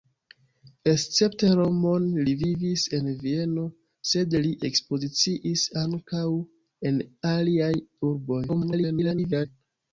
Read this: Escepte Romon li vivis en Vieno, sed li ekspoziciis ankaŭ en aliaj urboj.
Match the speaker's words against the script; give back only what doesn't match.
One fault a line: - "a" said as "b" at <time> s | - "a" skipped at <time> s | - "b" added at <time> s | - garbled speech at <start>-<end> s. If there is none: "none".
- garbled speech at 8.5-9.5 s